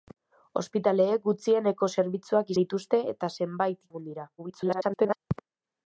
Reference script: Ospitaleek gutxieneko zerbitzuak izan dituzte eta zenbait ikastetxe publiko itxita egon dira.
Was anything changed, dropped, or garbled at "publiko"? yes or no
yes